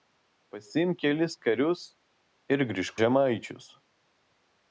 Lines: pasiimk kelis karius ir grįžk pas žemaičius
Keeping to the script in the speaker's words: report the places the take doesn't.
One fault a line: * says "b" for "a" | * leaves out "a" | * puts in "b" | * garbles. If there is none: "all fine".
* leaves out "pas"